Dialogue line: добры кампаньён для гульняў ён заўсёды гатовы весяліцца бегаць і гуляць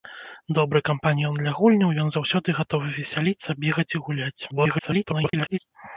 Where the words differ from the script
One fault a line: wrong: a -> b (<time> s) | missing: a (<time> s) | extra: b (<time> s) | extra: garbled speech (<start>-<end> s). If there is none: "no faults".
extra: garbled speech (4.5-5.6 s)